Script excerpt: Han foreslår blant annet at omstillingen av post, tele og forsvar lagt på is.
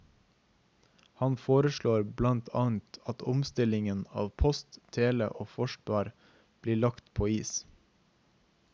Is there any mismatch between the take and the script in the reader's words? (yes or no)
yes